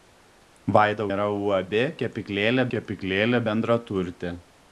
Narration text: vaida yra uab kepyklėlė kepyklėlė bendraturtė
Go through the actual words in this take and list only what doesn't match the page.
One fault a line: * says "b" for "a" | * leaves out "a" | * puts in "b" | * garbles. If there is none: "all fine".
all fine